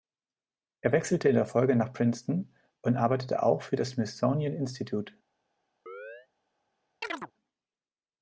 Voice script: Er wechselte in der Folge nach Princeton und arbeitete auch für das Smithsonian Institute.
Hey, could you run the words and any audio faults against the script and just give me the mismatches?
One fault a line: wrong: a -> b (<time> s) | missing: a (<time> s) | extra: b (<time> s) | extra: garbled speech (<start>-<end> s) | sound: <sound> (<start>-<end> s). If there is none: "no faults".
sound: chirp (5.9-6.3 s)
sound: chirp (7.0-7.3 s)